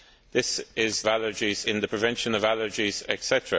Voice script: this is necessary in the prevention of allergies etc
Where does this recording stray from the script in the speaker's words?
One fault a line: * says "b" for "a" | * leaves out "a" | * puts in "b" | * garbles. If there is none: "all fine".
* says "allergies" for "necessary"